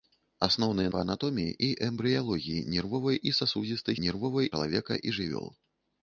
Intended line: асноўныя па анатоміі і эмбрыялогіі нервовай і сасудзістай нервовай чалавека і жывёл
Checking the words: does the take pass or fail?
pass